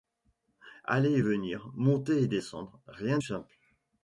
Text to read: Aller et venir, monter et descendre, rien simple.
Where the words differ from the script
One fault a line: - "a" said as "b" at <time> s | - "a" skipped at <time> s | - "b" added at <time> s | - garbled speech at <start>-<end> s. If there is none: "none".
none